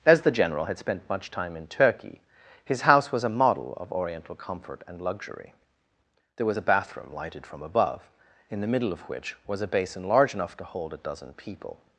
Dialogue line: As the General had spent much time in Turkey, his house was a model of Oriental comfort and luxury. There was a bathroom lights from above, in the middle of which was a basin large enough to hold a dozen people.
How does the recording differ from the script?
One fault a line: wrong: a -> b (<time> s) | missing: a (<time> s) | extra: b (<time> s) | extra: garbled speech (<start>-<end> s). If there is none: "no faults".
wrong: lights -> lighted (7.1 s)